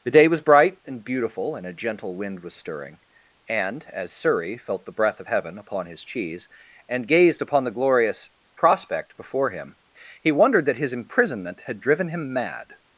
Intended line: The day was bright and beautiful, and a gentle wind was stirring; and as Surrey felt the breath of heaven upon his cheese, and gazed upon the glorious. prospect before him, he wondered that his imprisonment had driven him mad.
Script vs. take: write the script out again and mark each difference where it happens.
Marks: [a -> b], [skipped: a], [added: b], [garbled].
The day was bright and beautiful, and a gentle wind was stirring; and as Surrey felt the breath of heaven upon his cheese, and gazed upon the glorious. prospect before him, he wondered that his imprisonment had driven him mad.